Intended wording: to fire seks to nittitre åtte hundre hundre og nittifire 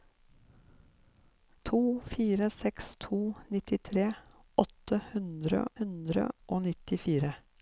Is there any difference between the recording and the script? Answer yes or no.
no